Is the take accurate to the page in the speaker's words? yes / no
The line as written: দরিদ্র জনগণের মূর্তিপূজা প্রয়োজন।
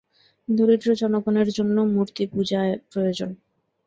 no